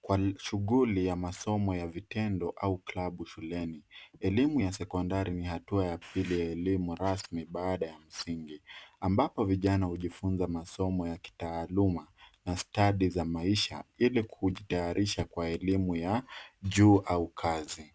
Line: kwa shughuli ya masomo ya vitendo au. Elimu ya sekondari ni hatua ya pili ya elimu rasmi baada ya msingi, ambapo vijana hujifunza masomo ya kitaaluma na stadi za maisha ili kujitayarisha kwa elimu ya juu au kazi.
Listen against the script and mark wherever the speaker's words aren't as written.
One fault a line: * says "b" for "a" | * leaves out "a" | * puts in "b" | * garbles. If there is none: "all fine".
* puts in "klabu shuleni"